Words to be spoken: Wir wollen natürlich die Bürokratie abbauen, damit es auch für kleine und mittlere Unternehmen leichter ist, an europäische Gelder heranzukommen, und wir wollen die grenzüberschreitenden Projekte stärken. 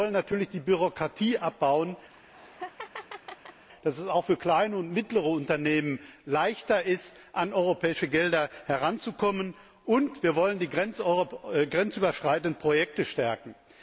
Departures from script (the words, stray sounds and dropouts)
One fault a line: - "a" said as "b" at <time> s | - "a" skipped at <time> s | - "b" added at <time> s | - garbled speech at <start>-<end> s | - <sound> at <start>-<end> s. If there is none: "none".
- laugh at 2.1-3.6 s